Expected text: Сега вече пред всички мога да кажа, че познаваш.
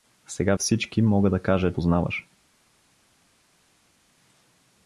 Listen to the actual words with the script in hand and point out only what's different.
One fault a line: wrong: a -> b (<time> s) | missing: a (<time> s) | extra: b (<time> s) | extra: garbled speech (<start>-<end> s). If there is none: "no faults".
missing: вече пред (0.6 s)
missing: че (1.7 s)